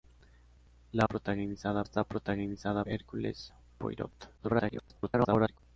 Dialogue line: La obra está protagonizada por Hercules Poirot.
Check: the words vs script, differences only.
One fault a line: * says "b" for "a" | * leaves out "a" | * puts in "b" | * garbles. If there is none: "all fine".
* says "protagonizada" for "obra"
* leaves out "por"
* garbles